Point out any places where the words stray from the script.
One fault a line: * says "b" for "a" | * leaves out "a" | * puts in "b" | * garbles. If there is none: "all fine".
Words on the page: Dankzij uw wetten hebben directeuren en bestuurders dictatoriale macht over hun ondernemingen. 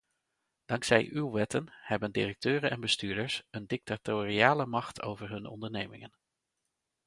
* puts in "een"